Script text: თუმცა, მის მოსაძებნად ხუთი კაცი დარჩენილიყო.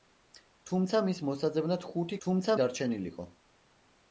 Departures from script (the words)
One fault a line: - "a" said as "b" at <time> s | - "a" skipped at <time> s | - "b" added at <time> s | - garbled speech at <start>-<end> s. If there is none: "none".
- "კაცი" said as "თუმცა" at 2.3 s